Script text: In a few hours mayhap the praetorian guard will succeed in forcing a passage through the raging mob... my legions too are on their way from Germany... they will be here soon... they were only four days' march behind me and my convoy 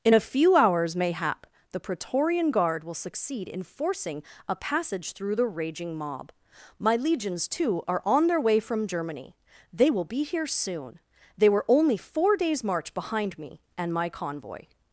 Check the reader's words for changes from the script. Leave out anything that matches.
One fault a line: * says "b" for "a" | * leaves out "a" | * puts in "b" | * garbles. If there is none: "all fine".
all fine